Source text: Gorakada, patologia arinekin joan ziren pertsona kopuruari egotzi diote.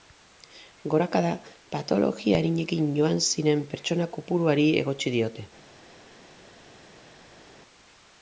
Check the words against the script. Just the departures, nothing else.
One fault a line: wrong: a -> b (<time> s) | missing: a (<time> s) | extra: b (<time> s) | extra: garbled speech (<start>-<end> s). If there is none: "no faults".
no faults